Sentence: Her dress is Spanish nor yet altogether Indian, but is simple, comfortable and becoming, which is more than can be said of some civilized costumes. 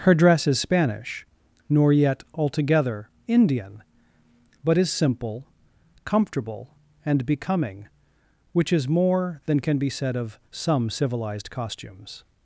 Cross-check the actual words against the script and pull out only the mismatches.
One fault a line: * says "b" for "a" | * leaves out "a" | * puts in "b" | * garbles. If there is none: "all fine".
all fine